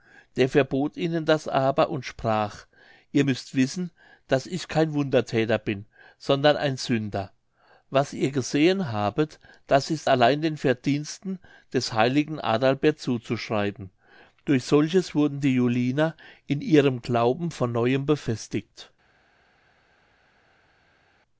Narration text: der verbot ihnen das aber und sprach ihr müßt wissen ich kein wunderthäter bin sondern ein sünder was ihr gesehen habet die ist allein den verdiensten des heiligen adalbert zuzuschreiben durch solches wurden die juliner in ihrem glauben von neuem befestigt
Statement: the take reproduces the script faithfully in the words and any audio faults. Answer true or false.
false